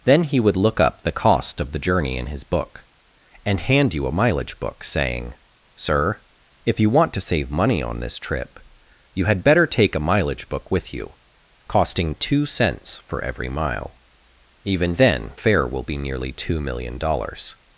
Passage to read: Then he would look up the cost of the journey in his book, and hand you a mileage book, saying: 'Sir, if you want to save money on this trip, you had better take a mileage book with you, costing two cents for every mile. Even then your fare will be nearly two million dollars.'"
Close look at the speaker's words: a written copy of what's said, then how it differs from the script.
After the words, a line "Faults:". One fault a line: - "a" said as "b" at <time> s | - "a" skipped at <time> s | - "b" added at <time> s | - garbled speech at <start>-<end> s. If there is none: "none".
Then he would look up the cost of the journey in his book, and hand you a mileage book, saying: 'Sir, if you want to save money on this trip, you had better take a mileage book with you, costing two cents for every mile. Even then fare will be nearly two million dollars.'"
Faults:
- "your" skipped at 15.3 s